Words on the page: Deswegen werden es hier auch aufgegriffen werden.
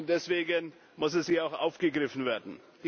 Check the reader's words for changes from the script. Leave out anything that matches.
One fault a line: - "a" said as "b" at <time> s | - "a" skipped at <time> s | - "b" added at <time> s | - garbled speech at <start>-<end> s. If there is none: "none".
- "werden" said as "muss" at 1.0 s